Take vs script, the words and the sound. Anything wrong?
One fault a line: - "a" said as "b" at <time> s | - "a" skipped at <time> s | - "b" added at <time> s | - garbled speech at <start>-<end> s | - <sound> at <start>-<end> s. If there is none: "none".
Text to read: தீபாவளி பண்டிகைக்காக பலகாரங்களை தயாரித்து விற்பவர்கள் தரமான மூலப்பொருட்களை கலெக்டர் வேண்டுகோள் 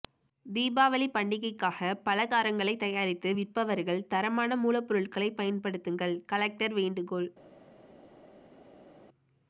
- "பயன்படுத்துங்கள்" added at 5.4 s